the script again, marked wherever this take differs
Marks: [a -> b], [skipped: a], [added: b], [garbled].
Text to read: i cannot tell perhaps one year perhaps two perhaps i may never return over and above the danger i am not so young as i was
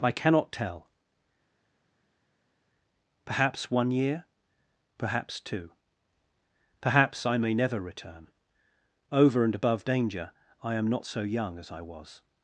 i cannot tell perhaps one year perhaps two perhaps i may never return over and above [skipped: the] danger i am not so young as i was